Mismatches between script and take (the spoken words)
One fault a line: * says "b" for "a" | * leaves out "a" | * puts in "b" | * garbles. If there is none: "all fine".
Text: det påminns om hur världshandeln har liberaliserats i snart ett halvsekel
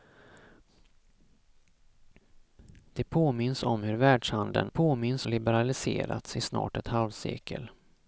* says "påminns" for "har"